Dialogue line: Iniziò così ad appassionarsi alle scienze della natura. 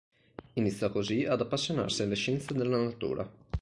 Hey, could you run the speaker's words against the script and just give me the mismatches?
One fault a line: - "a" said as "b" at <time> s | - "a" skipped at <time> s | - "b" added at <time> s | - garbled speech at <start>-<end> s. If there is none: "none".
none